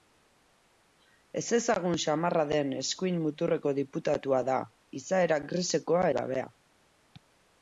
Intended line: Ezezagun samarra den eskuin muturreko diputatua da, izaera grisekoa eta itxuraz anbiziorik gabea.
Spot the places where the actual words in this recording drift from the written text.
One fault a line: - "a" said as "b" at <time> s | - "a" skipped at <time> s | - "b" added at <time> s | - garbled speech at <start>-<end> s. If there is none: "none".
- "eta itxuraz anbiziorik" skipped at 6.0 s